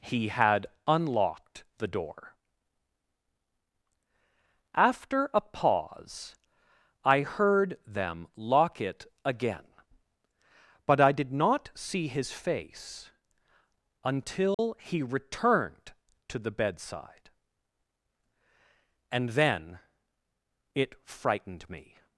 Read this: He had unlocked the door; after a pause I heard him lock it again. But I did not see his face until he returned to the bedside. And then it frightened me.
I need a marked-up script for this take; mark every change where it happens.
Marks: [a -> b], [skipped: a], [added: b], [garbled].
He had unlocked the door; after a pause I heard [him -> them] lock it again. But I did not see his face until he returned to the bedside. And then it frightened me.